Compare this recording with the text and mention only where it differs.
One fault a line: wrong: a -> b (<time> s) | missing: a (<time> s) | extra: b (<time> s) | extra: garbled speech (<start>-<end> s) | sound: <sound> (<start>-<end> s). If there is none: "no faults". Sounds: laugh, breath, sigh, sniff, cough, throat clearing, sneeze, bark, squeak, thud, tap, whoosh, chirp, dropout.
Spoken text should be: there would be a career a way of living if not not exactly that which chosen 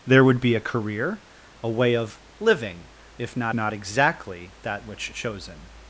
no faults